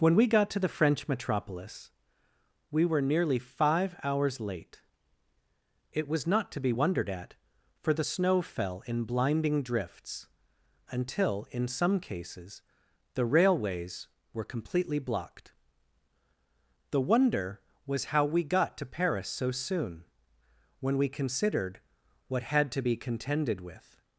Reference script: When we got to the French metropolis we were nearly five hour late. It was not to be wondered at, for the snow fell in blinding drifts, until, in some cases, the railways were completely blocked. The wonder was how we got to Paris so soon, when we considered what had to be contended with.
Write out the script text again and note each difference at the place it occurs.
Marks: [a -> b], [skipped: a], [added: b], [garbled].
When we got to the French metropolis we were nearly five [hour -> hours] late. It was not to be wondered at, for the snow fell in blinding drifts, until, in some cases, the railways were completely blocked. The wonder was how we got to Paris so soon, when we considered what had to be contended with.